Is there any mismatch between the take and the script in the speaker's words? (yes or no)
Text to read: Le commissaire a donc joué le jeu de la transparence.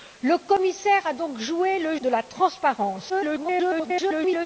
yes